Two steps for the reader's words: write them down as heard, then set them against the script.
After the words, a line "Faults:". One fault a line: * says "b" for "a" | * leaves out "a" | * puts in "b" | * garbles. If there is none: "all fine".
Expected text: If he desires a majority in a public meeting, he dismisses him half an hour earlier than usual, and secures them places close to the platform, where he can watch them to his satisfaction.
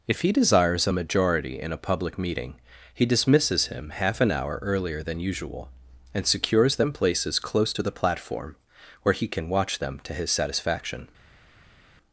If he desires a majority in a public meeting, he dismisses him half an hour earlier than usual, and secures them places close to the platform, where he can watch them to his satisfaction.
Faults:
all fine